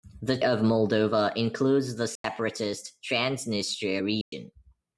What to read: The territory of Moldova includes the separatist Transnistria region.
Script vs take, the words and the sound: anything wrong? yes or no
yes